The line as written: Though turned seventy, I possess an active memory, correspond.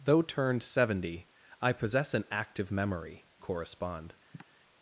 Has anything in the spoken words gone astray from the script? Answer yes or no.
no